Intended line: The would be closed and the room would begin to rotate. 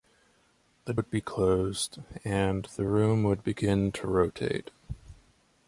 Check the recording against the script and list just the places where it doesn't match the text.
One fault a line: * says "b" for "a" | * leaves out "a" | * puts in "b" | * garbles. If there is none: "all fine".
all fine